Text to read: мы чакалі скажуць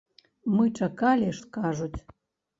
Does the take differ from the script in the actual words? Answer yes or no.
no